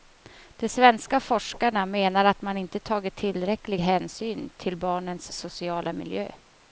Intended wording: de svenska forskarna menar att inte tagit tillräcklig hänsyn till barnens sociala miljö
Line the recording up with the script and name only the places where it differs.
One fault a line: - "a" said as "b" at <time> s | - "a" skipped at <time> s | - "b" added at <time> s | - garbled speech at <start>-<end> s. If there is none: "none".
- "man" added at 2.4 s